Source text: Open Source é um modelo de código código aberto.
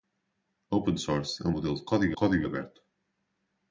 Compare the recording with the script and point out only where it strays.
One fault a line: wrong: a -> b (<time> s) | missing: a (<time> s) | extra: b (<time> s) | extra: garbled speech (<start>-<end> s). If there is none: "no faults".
no faults